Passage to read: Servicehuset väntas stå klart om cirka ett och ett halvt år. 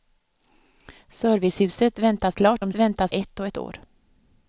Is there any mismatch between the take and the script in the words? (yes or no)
yes